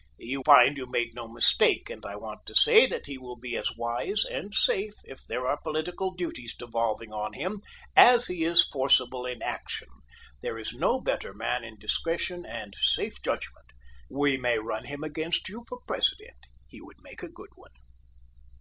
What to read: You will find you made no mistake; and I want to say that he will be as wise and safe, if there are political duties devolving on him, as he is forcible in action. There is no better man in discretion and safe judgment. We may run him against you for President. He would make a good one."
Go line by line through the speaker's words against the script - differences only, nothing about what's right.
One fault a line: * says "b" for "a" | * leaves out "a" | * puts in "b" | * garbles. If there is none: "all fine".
* leaves out "will"